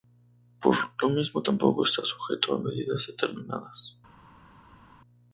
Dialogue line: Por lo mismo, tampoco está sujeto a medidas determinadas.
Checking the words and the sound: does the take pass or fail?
pass